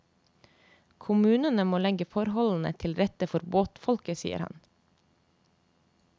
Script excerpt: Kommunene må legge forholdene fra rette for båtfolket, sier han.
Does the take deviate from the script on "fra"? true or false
true